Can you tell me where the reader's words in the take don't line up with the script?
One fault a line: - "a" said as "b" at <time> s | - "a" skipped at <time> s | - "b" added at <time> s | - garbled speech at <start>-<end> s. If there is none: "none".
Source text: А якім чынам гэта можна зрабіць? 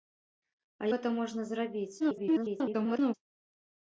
- "якім чынам" skipped at 0.9 s
- garbled speech at 2.0-3.1 s